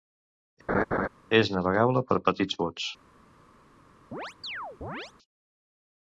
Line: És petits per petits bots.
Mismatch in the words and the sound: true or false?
true